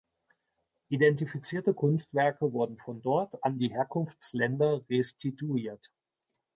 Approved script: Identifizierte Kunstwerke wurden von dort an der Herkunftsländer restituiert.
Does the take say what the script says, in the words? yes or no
no